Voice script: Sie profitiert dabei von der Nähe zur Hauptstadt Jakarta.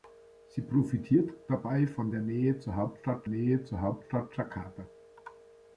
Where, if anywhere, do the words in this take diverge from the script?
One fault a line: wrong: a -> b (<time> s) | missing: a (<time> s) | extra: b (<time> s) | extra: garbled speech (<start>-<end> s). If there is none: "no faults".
extra: Nähe zur Hauptstadt (3.2 s)